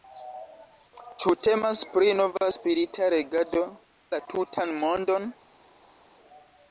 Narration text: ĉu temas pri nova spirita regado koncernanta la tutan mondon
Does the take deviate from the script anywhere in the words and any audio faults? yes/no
yes